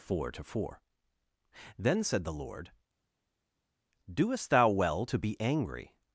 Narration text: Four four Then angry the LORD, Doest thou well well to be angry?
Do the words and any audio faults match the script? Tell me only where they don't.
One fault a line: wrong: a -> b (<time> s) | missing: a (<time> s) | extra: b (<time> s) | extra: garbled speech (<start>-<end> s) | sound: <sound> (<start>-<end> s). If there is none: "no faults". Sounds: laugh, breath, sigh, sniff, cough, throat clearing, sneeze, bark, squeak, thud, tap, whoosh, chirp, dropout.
extra: to (0.3 s)
wrong: angry -> said (2.0 s)
missing: well (5.1 s)